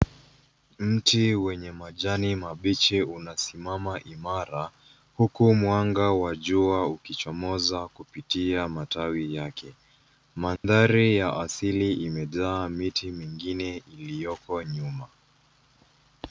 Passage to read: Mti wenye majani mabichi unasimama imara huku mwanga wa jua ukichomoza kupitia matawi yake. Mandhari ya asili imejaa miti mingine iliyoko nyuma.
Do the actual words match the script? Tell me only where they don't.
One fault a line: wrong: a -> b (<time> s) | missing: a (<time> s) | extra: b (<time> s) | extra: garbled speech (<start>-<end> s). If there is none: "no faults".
no faults